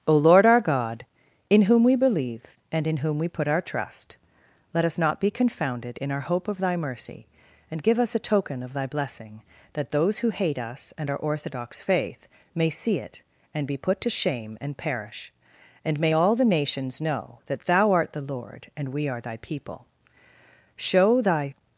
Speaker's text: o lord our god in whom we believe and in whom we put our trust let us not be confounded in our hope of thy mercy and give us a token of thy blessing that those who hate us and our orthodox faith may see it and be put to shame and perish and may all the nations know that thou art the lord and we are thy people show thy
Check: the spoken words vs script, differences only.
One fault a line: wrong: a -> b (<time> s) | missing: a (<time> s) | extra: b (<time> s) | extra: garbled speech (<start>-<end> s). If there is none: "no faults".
no faults